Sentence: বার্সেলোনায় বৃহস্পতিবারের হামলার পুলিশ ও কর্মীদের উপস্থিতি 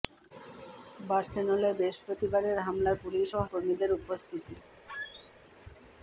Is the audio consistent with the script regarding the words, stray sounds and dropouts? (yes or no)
no